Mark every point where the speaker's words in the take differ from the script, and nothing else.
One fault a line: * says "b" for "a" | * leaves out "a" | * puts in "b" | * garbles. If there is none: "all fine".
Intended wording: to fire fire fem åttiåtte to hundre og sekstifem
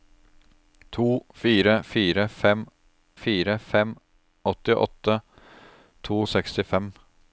* puts in "fire fem"
* leaves out "hundre"